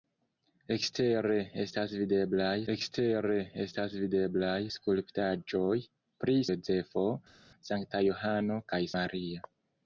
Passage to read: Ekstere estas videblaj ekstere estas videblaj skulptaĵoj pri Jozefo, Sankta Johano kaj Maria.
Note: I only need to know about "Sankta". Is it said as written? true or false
true